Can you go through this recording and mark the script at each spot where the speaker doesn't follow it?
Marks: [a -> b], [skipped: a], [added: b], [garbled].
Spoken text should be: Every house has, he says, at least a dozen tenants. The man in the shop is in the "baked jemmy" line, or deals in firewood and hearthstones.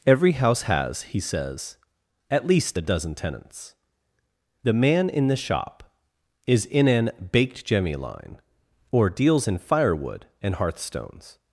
Every house has, he says, at least a dozen tenants. The man in the shop is in [the -> an] "baked jemmy" line, or deals in firewood and hearthstones.